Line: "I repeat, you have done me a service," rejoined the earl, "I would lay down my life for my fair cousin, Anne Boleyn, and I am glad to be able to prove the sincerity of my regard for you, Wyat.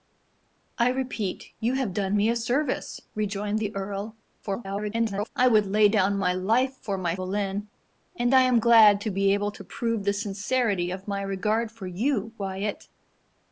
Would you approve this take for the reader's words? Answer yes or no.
no